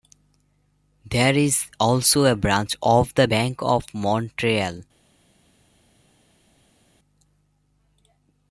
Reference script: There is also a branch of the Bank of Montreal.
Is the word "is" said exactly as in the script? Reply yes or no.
yes